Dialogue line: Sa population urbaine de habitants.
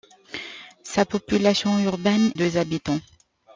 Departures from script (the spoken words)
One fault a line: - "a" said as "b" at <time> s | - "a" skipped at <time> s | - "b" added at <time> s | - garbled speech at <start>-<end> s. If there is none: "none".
none